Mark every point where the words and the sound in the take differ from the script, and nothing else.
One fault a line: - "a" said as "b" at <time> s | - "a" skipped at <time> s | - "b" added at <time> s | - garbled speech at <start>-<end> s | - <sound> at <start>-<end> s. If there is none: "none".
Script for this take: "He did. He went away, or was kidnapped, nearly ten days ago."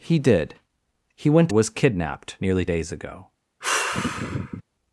- "away or" skipped at 1.5 s
- "ten" skipped at 2.7 s
- sigh at 3.6-4.6 s